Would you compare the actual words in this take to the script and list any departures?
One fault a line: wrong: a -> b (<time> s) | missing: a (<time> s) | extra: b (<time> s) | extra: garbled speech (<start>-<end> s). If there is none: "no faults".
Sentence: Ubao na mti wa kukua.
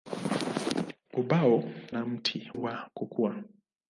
no faults